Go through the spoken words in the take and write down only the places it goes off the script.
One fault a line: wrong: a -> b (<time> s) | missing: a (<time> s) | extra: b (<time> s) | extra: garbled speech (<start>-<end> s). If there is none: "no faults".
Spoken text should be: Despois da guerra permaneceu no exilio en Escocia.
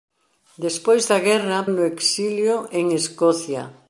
missing: permaneceu (1.7 s)